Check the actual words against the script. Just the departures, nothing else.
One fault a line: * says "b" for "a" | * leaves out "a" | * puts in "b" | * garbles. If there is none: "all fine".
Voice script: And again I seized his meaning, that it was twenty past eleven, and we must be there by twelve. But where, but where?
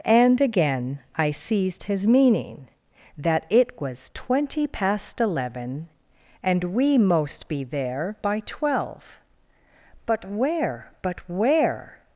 * says "most" for "must"